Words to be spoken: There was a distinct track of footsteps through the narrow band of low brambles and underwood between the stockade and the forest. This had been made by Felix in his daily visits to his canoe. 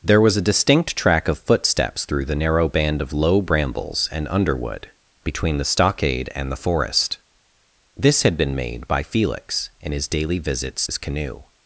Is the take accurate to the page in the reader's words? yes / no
no